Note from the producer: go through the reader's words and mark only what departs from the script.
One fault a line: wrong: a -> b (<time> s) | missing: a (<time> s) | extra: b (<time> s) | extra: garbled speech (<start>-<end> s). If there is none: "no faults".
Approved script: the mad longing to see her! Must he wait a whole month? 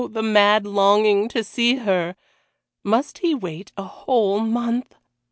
no faults